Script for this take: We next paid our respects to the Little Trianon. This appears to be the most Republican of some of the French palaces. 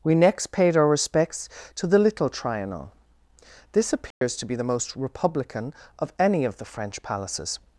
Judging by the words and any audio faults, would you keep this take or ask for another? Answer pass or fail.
fail